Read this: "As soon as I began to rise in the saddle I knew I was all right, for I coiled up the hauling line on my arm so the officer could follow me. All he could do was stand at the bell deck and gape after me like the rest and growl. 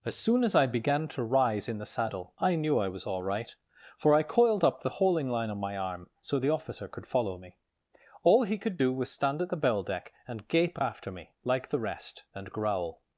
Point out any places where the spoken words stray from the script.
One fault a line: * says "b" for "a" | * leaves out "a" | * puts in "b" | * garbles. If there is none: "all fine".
all fine